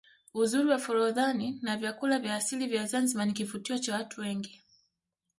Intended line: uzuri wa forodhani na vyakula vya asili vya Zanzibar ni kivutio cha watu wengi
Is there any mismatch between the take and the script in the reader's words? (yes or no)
no